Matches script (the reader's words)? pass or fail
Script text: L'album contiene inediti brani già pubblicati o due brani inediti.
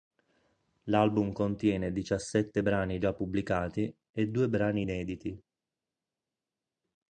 fail